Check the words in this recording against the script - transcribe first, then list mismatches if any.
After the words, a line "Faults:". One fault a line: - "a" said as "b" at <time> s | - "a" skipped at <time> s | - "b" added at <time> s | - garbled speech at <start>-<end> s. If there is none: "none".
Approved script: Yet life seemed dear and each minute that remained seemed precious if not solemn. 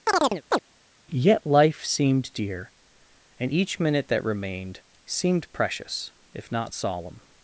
Yet life seemed dear and each minute that remained seemed precious if not solemn.
Faults:
none